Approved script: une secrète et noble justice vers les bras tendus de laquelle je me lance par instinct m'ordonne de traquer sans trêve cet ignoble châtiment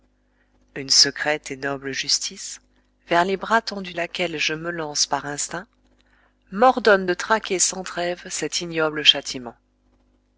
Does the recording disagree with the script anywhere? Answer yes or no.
yes